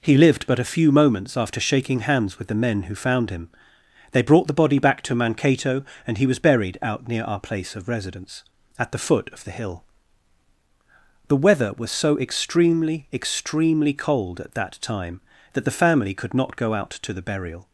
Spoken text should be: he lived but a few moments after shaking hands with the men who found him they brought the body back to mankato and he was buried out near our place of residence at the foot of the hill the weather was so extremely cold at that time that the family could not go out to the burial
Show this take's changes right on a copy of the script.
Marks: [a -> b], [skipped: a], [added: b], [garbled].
he lived but a few moments after shaking hands with the men who found him they brought the body back to mankato and he was buried out near our place of residence at the foot of the hill the weather was so extremely [added: extremely] cold at that time that the family could not go out to the burial